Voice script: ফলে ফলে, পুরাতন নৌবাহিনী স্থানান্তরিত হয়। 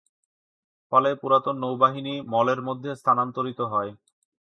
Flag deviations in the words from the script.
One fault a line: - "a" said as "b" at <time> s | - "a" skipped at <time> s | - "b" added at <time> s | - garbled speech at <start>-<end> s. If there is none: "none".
- "ফলে" skipped at 1.1 s
- "মলের মধ্যে" added at 2.3 s